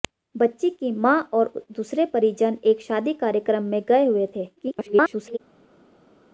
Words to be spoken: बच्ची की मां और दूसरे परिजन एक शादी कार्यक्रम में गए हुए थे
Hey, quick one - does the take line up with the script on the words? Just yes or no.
no